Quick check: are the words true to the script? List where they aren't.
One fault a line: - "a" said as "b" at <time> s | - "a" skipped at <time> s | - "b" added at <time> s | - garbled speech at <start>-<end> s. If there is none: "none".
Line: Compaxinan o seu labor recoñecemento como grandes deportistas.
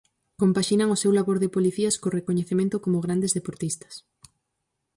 - "de policías co" added at 1.4 s